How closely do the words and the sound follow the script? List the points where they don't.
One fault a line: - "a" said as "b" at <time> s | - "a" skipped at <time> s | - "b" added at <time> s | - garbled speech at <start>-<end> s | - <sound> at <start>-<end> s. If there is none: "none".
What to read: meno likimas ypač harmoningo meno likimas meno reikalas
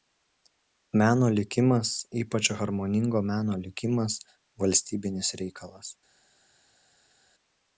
- "meno" said as "valstybinis" at 4.6 s